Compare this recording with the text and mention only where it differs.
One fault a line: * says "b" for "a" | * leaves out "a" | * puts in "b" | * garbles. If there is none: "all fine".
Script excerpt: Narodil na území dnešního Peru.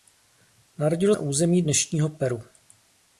all fine